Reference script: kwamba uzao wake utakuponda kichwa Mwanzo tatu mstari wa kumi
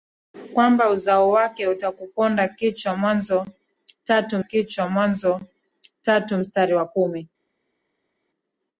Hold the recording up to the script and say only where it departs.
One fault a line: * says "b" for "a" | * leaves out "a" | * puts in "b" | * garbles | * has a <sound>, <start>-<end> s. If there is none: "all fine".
* puts in "kichwa Mwanzo tatu"